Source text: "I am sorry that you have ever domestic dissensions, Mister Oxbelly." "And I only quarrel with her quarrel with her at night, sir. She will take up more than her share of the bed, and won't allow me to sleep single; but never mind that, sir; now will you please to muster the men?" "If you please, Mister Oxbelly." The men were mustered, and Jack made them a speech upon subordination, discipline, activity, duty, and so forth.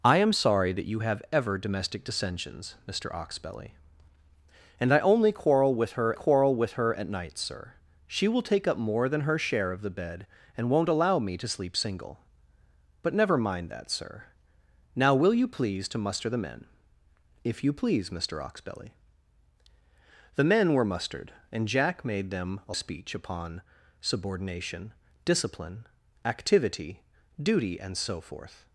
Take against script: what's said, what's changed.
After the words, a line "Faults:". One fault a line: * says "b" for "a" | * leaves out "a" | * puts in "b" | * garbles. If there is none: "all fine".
"I am sorry that you have ever domestic dissensions, Mister Oxbelly." "And I only quarrel with her quarrel with her at night, sir. She will take up more than her share of the bed, and won't allow me to sleep single; but never mind that, sir; now will you please to muster the men?" "If you please, Mister Oxbelly." The men were mustered, and Jack made them a speech upon subordination, discipline, activity, duty, and so forth.
Faults:
all fine